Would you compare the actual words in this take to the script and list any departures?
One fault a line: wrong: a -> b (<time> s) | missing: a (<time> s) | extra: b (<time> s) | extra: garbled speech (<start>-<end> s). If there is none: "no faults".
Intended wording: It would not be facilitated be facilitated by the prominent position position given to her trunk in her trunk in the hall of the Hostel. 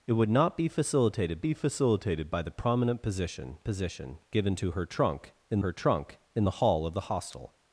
no faults